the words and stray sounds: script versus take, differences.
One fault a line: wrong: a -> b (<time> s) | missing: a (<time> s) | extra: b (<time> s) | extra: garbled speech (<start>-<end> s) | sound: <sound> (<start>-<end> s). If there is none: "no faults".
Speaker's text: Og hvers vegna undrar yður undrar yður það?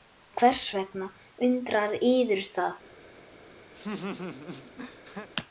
missing: undrar yður (2.5 s)
sound: laugh (3.8-5.3 s)